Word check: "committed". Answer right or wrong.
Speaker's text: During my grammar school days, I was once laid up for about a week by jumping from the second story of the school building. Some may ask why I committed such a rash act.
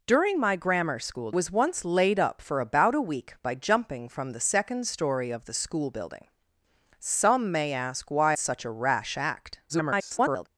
wrong